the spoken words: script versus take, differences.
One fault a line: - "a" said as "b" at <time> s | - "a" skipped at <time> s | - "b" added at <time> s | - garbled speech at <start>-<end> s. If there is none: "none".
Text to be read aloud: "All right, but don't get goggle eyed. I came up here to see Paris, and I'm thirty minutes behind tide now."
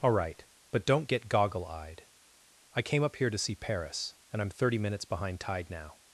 none